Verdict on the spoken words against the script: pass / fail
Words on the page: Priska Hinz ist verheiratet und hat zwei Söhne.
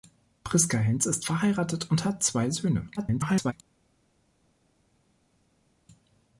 fail